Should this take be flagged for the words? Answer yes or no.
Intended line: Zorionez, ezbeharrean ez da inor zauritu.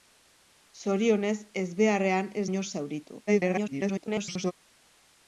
yes